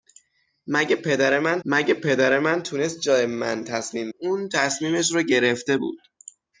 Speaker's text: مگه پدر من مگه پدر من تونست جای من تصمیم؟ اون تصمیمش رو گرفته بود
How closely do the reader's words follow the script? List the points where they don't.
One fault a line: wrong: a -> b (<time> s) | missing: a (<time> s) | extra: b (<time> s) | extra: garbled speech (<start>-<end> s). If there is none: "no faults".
no faults